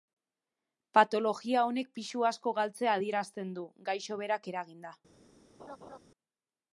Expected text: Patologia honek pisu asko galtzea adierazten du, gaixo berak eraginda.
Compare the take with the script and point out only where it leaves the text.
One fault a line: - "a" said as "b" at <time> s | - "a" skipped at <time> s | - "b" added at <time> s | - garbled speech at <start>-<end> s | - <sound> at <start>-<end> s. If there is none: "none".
- laugh at 5.6-6.0 s